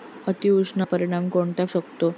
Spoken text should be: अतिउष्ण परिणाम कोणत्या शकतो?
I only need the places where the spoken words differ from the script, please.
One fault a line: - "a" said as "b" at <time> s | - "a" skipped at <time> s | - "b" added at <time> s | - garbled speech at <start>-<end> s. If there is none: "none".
none